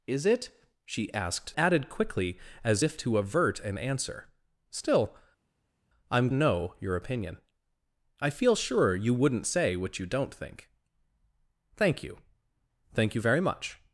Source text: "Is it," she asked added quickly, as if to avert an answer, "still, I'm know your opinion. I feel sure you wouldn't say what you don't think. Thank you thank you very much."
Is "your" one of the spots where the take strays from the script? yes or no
no